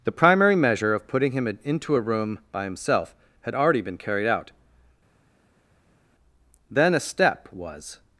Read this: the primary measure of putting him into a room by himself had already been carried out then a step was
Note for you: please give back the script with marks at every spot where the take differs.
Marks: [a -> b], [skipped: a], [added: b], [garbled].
the primary measure of putting him into a room by himself had already been carried out then a step was